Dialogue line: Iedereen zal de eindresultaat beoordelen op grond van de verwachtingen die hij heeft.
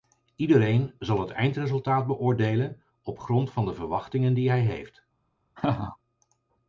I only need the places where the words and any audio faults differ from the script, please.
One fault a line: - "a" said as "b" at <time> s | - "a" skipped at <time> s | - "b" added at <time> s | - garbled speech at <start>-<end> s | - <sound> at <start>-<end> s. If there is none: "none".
- "de" said as "het" at 1.2 s
- laugh at 5.6-6.0 s